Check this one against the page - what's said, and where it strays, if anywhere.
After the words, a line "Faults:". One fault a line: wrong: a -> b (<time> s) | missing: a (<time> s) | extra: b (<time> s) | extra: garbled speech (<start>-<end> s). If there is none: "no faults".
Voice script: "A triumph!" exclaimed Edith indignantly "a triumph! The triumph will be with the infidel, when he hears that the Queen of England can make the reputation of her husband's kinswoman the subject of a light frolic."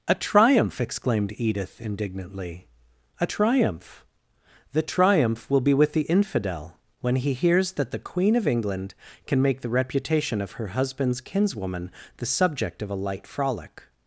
"A triumph!" exclaimed Edith indignantly "a triumph! The triumph will be with the infidel, when he hears that the Queen of England can make the reputation of her husband's kinswoman the subject of a light frolic."
Faults:
no faults